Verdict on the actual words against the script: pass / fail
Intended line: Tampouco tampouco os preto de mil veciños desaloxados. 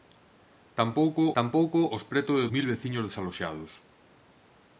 pass